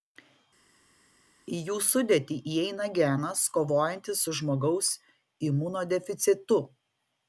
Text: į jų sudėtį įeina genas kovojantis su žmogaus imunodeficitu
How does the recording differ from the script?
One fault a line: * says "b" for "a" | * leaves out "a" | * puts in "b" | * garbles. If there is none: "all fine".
all fine